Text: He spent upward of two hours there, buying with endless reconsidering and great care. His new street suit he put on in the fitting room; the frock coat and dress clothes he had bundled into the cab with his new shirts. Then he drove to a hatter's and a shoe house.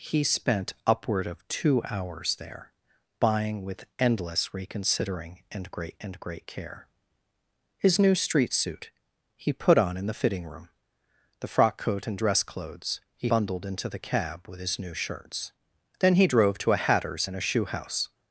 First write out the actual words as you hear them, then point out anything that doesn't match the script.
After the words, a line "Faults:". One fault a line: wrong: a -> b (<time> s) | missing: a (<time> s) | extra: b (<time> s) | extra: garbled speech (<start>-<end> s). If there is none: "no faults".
He spent upward of two hours there, buying with endless reconsidering and great and great care. His new street suit he put on in the fitting room; the frock coat and dress clothes he bundled into the cab with his new shirts. Then he drove to a hatter's and a shoe house.
Faults:
extra: and great (6.0 s)
missing: had (13.3 s)